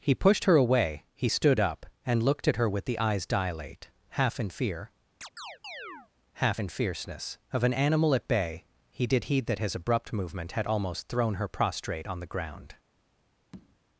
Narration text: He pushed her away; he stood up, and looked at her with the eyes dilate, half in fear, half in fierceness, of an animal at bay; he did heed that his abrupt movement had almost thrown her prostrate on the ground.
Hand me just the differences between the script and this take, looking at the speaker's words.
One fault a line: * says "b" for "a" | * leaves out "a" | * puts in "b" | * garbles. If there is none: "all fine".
all fine